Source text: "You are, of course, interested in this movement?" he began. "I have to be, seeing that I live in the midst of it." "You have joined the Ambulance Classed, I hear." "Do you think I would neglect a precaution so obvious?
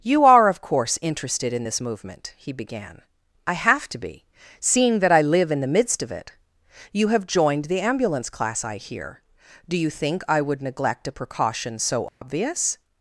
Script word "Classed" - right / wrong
wrong